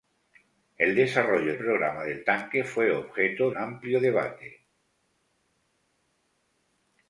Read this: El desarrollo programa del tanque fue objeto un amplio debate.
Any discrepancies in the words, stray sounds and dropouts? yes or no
no